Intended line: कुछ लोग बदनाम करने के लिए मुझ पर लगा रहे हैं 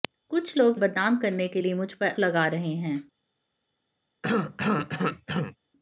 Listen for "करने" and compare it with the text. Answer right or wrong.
right